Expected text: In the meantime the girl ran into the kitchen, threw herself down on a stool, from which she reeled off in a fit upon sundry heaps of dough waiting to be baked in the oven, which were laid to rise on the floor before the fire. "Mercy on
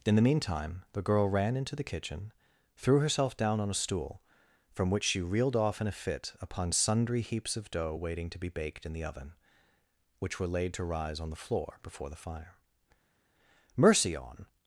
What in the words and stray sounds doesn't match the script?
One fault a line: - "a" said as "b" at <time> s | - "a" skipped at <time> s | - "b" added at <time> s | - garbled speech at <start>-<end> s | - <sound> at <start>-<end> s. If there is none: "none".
none